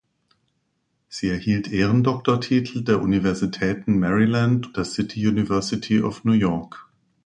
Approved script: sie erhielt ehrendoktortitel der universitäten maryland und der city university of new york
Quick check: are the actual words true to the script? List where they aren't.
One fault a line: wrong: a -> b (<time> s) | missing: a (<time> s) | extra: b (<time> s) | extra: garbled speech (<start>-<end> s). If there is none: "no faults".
missing: und (4.8 s)